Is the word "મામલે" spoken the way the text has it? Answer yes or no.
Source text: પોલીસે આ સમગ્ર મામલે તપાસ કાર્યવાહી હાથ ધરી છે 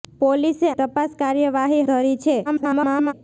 no